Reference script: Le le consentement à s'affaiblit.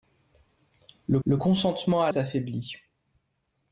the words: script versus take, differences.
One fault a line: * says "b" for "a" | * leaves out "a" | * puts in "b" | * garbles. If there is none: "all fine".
all fine